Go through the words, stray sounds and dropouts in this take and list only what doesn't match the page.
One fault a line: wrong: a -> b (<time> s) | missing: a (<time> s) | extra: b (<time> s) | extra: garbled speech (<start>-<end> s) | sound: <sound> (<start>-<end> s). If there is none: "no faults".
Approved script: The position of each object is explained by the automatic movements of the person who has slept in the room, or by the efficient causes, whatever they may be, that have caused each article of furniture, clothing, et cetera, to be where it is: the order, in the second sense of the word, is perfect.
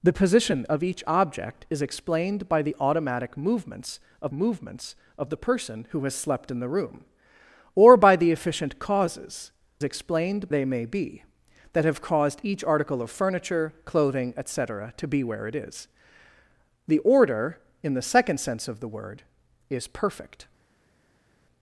extra: movements of (4.3 s)
wrong: whatever -> explained (9.8 s)